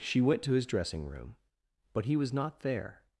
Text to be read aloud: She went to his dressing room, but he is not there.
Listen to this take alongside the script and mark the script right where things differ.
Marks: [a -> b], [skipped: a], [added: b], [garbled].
She went to his dressing room, but he [is -> was] not there.